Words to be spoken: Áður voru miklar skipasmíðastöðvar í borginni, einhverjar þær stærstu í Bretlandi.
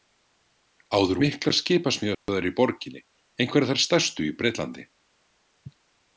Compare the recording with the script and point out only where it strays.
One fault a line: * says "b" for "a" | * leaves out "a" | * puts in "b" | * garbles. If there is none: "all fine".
* leaves out "voru"